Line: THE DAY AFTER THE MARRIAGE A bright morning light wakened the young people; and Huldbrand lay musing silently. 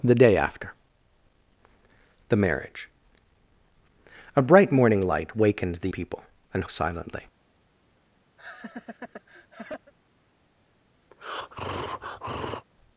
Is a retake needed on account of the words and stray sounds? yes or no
yes